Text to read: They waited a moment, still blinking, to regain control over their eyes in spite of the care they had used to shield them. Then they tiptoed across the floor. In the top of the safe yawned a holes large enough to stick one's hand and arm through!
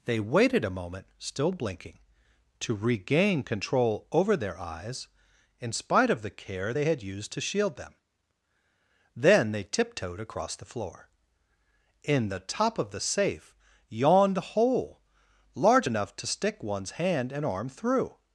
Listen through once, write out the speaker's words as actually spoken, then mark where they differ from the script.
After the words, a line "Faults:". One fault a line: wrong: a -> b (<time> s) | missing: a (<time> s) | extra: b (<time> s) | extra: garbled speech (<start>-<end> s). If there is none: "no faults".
They waited a moment, still blinking, to regain control over their eyes in spite of the care they had used to shield them. Then they tiptoed across the floor. In the top of the safe yawned a hole large enough to stick one's hand and arm through!
Faults:
wrong: holes -> hole (14.4 s)